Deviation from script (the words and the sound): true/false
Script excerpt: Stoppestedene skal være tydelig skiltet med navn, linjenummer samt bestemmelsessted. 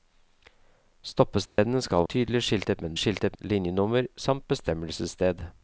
true